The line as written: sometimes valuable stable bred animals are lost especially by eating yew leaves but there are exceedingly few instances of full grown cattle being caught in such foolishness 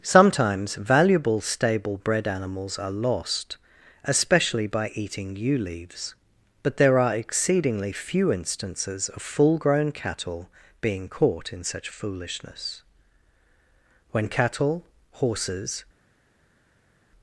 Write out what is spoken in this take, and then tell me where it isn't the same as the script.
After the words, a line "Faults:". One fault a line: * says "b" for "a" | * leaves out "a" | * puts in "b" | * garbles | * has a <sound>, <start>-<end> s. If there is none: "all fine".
sometimes valuable stable bred animals are lost especially by eating yew leaves but there are exceedingly few instances of full grown cattle being caught in such foolishness when cattle horses
Faults:
* puts in "when cattle horses"